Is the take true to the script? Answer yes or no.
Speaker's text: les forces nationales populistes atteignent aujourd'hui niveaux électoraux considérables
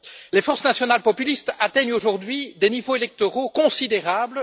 no